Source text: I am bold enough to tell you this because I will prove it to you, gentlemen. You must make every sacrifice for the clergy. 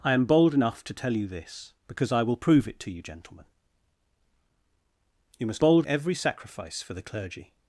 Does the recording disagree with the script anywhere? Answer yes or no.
yes